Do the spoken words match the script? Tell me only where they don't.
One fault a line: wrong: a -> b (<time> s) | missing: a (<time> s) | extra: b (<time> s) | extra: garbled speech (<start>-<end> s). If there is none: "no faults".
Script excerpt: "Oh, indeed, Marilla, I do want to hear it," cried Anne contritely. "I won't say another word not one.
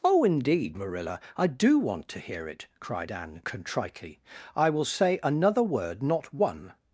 wrong: won't -> will (4.7 s)